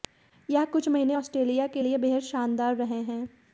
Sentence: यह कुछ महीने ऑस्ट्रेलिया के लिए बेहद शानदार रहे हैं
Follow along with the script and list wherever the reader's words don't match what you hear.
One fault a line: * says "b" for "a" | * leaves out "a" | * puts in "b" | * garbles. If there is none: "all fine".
all fine